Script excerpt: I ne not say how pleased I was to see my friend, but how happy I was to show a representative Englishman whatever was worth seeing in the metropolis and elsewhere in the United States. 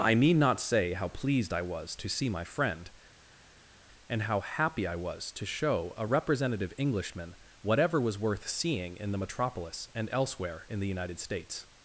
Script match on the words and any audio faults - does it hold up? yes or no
no